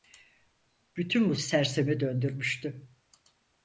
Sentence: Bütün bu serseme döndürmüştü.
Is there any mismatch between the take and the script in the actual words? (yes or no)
no